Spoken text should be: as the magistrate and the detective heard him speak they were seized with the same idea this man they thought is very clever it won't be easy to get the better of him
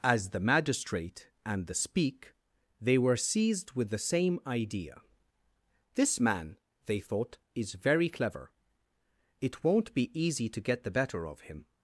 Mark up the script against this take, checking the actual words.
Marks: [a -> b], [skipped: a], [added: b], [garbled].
as the magistrate and the [skipped: detective heard him] speak they were seized with the same idea this man they thought is very clever it won't be easy to get the better of him